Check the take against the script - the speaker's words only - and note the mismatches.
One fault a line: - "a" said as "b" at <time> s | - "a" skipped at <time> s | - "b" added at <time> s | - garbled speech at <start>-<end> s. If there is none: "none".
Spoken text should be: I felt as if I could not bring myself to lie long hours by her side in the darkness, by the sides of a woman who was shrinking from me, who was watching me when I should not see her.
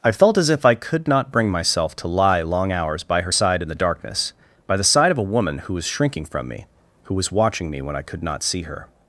- "sides" said as "side" at 4.8 s
- "should" said as "could" at 8.0 s